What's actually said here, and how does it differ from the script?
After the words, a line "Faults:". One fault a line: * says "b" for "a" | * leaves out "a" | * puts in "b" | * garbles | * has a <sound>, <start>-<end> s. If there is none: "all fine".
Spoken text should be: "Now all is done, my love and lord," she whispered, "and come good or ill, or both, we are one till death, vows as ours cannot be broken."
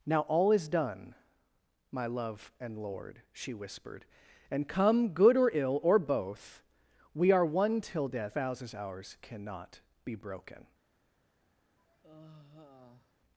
"Now all is done, my love and lord," she whispered, "and come good or ill, or both, we are one till death, vows as ours cannot be broken."
Faults:
* has a sigh, 11.8-13.1 s